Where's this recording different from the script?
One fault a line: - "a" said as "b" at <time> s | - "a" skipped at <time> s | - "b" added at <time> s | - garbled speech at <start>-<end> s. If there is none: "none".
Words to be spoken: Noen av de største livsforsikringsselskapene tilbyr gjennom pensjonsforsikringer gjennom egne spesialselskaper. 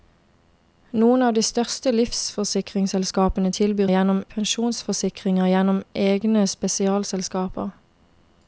none